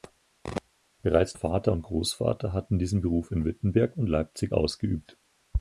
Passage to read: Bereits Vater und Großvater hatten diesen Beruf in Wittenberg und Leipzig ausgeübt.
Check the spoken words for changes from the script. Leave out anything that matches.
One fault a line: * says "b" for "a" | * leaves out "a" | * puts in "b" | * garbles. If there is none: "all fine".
all fine